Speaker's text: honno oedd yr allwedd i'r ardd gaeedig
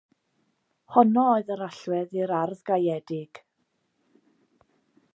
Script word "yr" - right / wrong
right